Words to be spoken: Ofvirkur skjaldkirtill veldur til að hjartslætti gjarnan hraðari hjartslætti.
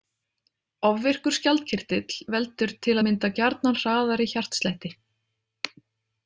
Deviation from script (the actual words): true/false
true